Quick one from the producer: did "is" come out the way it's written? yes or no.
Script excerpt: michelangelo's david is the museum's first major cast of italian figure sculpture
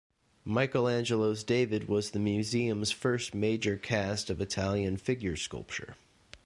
no